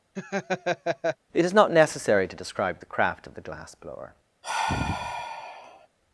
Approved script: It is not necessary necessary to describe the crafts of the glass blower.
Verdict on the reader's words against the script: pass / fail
fail